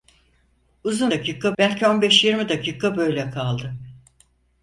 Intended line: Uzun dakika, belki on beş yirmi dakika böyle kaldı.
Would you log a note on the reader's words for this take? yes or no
no